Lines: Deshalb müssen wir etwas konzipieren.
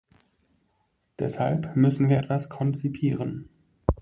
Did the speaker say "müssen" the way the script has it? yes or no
yes